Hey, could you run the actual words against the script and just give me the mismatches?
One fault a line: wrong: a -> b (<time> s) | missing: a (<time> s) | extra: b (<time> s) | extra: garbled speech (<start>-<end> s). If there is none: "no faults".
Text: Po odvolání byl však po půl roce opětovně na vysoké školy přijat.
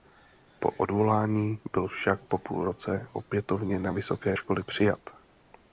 no faults